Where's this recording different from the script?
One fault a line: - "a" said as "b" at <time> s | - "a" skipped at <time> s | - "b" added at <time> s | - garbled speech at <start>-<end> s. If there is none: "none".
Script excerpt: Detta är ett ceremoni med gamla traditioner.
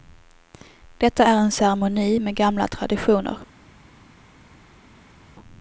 - "ett" said as "en" at 1.4 s